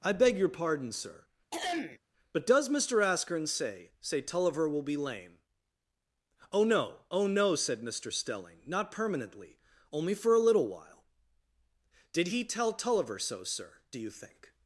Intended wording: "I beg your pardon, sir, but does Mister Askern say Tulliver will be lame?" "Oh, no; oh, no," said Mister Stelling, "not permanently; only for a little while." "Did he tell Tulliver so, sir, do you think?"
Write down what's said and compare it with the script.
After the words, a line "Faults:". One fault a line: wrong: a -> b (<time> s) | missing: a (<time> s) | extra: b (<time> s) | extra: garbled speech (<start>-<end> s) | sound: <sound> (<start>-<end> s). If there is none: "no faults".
"I beg your pardon, sir, but does Mister Askern say say Tulliver will be lame?" "Oh, no; oh, no," said Mister Stelling, "not permanently; only for a little while." "Did he tell Tulliver so, sir, do you think?"
Faults:
sound: throat clearing (1.5-2.0 s)
extra: say (4.0 s)